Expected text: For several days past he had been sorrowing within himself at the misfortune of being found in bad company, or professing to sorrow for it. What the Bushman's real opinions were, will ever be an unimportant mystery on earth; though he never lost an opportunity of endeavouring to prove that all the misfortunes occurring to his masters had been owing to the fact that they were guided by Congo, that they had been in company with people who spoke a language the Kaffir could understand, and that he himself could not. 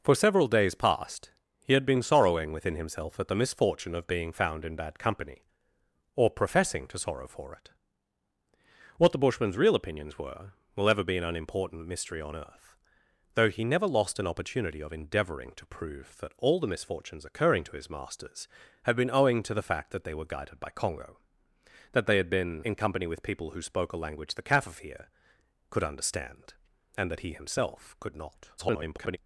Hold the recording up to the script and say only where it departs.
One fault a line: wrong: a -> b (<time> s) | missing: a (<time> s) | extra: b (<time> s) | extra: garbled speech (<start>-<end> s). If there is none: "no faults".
extra: garbled speech (28.6-29.2 s)